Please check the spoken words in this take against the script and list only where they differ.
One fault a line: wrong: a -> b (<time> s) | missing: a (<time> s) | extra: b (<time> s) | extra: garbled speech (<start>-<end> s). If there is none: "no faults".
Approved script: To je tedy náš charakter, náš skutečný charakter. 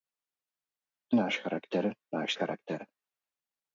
missing: je tedy (1.2 s)
missing: skutečný (2.3 s)